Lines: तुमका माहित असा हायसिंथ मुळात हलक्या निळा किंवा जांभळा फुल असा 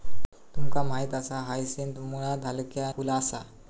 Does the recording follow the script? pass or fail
fail